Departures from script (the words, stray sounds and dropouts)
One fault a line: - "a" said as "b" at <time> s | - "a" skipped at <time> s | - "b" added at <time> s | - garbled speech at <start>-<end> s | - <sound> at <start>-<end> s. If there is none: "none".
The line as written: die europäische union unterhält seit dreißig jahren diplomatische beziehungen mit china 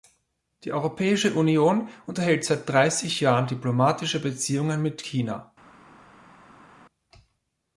none